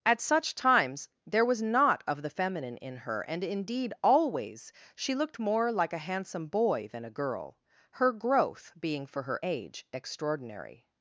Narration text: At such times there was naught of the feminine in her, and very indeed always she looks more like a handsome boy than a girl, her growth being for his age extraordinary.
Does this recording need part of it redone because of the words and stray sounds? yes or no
yes